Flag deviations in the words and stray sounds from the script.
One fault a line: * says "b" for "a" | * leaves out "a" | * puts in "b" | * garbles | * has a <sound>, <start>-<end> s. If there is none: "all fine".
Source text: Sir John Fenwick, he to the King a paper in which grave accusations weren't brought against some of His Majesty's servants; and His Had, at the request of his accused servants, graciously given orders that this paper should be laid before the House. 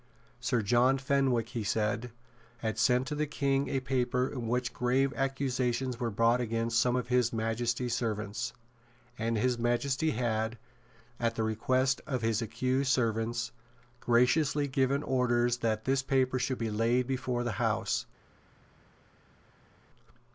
* puts in "said had sent"
* says "were" for "weren't"
* puts in "Majesty"